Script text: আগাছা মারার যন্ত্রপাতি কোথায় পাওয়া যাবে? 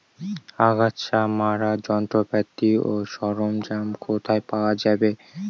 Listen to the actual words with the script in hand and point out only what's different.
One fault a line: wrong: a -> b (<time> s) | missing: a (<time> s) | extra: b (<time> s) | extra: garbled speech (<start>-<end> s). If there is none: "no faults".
extra: ও সরঞ্জাম (2.8 s)